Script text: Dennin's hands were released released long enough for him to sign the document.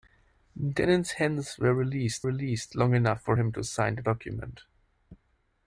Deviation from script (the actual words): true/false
false